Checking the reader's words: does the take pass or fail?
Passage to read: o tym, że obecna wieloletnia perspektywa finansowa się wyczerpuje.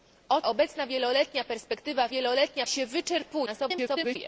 fail